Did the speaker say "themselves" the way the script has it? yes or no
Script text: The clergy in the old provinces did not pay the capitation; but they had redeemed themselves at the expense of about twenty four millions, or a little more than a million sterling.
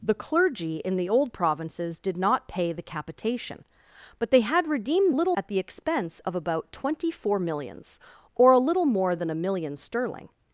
no